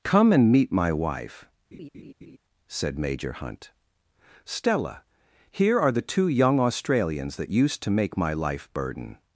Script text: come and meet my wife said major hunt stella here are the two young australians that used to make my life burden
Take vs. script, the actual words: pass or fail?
pass